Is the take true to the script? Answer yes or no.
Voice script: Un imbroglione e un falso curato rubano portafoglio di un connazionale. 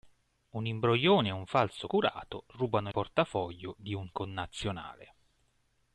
yes